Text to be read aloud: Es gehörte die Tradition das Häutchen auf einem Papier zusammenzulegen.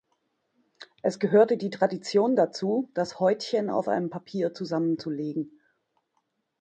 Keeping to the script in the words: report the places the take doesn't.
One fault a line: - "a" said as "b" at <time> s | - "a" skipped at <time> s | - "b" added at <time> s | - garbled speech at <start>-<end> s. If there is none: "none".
- "dazu" added at 2.4 s